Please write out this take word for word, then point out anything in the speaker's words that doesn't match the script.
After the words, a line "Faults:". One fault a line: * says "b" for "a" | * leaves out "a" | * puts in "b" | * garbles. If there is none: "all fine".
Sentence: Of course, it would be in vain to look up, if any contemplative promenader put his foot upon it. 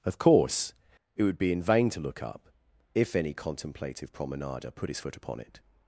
Of course, it would be in vain to look up, if any contemplative promenader put his foot upon it.
Faults:
all fine